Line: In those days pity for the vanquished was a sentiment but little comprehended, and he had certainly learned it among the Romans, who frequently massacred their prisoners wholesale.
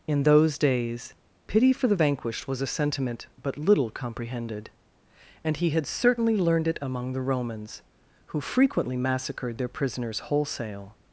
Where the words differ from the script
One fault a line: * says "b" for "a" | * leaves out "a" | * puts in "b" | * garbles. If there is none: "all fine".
all fine